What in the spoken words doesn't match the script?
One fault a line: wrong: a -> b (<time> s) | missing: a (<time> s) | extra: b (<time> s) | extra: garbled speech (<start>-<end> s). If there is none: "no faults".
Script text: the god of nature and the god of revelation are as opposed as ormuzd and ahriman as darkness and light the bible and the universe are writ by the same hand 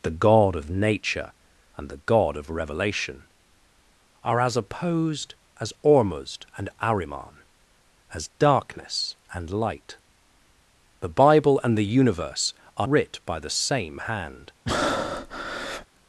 no faults